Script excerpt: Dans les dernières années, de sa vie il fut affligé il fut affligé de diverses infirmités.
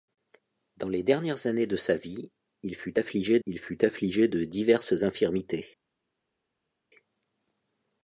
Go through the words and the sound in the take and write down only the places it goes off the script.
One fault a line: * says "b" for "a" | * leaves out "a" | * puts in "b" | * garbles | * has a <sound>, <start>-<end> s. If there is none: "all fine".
all fine